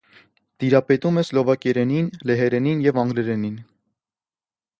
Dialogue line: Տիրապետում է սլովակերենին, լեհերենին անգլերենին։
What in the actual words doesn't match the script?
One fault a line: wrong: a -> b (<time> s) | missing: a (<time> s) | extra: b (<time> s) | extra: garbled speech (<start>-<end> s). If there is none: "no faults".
extra: և (2.9 s)